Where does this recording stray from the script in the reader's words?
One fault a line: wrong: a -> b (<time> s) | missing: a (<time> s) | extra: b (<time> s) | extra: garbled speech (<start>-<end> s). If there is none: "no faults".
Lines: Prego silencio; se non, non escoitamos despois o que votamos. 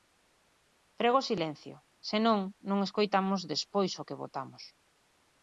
no faults